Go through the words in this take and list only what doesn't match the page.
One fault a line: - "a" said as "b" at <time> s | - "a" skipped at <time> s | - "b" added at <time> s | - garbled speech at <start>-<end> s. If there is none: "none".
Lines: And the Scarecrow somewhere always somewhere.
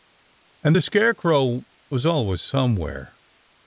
- "somewhere" said as "was" at 1.9 s